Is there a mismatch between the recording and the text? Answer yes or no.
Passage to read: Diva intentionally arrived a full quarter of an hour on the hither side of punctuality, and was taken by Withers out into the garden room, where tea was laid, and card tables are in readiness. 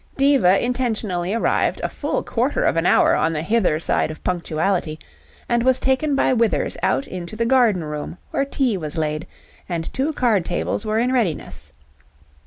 yes